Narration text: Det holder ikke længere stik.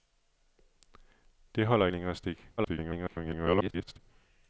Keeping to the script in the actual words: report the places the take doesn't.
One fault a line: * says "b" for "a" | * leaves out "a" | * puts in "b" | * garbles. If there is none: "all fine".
* leaves out "ikke"
* garbles